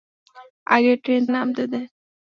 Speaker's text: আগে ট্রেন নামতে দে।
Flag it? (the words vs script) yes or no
no